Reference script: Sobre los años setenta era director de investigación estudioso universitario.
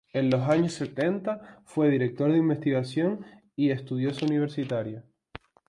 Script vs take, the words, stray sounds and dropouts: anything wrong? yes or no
yes